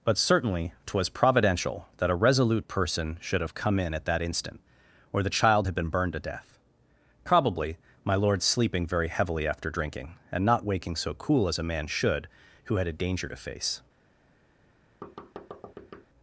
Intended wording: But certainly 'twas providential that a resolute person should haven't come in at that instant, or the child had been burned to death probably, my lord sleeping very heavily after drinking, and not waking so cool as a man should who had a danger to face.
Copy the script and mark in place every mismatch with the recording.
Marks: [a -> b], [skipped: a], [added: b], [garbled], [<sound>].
But certainly 'twas providential that a resolute person should [haven't -> have] come in at that instant, or the child had been burned to death probably, my lord sleeping very heavily after drinking, and not waking so cool as a man should who had a danger to face. [thud]